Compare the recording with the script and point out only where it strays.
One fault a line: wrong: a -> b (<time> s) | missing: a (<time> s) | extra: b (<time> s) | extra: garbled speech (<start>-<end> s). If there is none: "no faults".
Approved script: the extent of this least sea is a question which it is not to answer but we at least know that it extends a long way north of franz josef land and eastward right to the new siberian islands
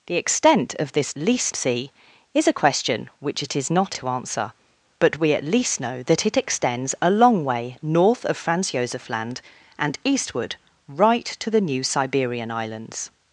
no faults